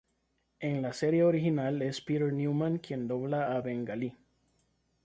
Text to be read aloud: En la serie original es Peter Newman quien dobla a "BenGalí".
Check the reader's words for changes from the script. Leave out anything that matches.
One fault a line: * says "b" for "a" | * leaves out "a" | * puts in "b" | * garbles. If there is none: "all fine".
all fine